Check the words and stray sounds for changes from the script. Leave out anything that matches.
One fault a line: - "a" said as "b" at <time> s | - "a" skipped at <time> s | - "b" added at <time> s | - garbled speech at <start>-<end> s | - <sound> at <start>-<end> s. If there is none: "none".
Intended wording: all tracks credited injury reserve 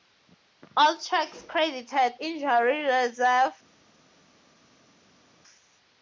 none